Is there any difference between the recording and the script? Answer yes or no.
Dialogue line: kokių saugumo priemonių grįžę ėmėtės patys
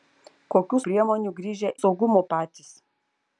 yes